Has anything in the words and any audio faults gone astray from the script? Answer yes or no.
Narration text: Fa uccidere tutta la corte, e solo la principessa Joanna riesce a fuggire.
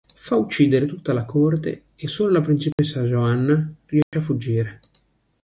yes